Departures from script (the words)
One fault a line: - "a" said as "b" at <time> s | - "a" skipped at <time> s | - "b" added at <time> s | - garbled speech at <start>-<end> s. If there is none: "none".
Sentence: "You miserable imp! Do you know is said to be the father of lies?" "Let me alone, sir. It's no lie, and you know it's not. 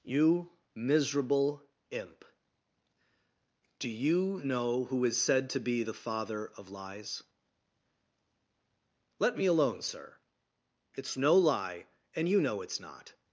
- "who" added at 4.8 s